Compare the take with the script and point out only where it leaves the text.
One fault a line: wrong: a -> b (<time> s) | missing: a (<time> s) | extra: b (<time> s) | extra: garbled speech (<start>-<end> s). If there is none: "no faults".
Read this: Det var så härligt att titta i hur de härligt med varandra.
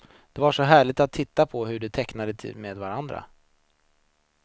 wrong: i -> på (1.5 s)
wrong: härligt -> tecknade (1.9 s)